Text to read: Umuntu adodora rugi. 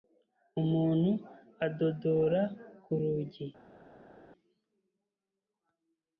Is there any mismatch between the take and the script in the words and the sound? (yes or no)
yes